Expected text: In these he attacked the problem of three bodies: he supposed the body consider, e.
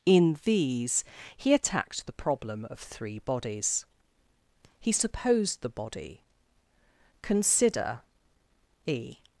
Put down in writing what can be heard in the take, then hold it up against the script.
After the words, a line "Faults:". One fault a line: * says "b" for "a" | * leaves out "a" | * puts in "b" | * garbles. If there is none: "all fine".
In these he attacked the problem of three bodies: he supposed the body consider, e.
Faults:
all fine